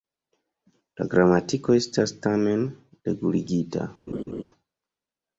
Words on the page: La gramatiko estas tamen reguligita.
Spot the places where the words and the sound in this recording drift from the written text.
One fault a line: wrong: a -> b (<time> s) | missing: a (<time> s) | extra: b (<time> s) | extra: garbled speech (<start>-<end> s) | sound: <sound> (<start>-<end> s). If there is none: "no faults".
sound: laugh (4.1-4.4 s)